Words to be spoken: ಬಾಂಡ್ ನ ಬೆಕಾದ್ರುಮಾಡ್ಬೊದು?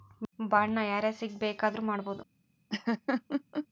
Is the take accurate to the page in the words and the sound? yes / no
no